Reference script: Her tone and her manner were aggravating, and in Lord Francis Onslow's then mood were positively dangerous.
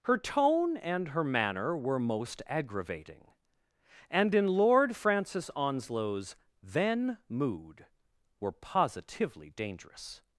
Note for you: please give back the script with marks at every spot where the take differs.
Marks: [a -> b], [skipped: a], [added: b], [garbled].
Her tone and her manner were [added: most] aggravating, and in Lord Francis Onslow's then mood were positively dangerous.